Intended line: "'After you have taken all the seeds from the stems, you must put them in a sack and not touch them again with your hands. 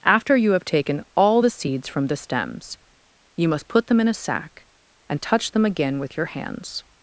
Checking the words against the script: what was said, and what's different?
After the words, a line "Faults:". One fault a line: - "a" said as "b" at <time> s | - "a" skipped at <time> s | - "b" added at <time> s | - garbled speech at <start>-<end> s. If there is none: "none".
"'After you have taken all the seeds from the stems, you must put them in a sack and touch them again with your hands.
Faults:
- "not" skipped at 5.2 s